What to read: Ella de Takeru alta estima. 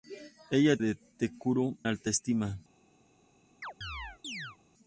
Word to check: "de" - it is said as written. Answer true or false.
true